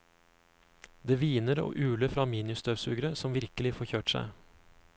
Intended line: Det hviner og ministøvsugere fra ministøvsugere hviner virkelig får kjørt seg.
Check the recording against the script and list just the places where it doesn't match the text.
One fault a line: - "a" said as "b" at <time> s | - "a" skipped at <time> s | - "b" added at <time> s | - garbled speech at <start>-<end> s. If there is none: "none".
- "ministøvsugere" said as "uler" at 1.9 s
- "hviner" said as "som" at 3.2 s